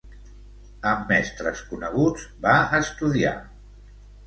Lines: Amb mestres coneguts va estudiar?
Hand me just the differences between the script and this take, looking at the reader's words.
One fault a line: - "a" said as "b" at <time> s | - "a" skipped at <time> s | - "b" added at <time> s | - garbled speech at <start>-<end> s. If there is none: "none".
none